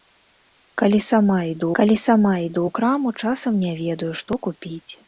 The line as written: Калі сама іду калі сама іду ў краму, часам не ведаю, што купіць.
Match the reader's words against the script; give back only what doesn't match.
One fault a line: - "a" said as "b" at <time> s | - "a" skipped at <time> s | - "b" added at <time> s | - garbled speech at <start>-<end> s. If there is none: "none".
none